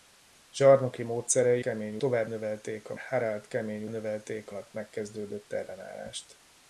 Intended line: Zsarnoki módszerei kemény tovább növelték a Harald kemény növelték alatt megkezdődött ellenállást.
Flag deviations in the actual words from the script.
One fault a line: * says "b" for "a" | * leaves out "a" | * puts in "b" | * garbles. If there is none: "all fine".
all fine